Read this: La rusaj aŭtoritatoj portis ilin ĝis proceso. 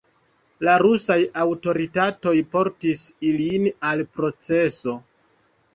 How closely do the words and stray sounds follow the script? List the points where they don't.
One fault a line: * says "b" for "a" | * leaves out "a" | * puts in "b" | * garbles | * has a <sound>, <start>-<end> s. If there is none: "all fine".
* says "al" for "ĝis"